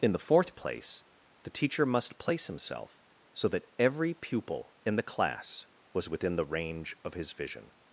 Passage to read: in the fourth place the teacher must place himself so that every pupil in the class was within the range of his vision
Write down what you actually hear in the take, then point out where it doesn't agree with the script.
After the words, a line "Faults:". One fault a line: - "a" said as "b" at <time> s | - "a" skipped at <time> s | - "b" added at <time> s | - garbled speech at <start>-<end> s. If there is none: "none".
in the fourth place the teacher must place himself so that every pupil in the class was within the range of his vision
Faults:
none